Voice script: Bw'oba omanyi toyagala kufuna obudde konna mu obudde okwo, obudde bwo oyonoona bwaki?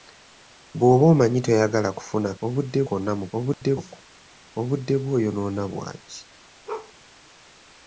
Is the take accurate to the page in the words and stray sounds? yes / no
no